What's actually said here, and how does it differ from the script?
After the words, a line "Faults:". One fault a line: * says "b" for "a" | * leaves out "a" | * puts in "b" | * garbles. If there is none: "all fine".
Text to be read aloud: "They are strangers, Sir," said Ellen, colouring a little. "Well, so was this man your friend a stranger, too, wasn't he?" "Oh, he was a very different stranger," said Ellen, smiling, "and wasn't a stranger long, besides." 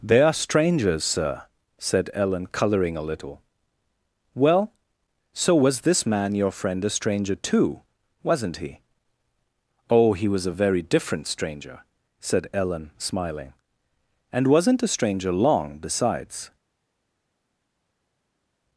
"They are strangers, Sir," said Ellen, colouring a little. "Well, so was this man your friend a stranger, too, wasn't he?" "Oh, he was a very different stranger," said Ellen, smiling, "and wasn't a stranger long, besides."
Faults:
all fine